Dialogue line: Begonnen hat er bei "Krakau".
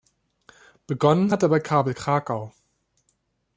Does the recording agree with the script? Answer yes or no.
no